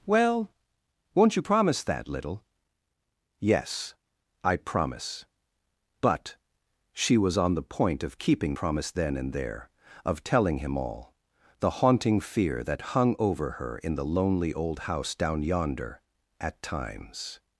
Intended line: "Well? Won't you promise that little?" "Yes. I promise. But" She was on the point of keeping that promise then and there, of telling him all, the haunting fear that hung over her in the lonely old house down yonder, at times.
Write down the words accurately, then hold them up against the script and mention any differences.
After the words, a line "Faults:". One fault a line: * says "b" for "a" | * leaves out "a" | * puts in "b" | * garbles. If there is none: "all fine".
"Well? Won't you promise that little?" "Yes. I promise. But" She was on the point of keeping promise then and there, of telling him all, the haunting fear that hung over her in the lonely old house down yonder, at times.
Faults:
* leaves out "that"